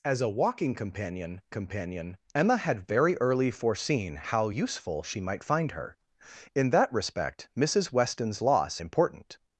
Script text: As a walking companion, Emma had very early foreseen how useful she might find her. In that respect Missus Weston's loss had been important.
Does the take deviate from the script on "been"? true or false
true